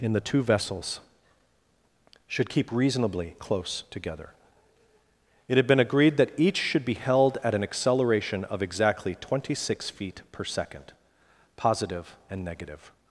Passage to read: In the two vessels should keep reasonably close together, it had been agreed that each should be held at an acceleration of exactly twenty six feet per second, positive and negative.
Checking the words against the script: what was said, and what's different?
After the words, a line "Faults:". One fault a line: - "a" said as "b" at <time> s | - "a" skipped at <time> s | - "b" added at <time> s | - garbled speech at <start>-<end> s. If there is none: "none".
In the two vessels should keep reasonably close together, it had been agreed that each should be held at an acceleration of exactly twenty six feet per second, positive and negative.
Faults:
none